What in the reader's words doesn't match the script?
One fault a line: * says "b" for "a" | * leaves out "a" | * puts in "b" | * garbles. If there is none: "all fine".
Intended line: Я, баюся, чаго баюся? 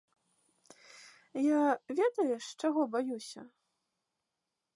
* says "ведаеш" for "баюся"